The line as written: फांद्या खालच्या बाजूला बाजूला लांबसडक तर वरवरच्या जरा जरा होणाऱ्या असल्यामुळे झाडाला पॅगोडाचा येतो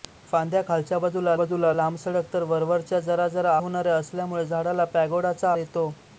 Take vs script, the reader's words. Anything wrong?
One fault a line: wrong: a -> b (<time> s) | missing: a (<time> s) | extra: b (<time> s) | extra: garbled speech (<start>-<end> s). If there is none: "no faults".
no faults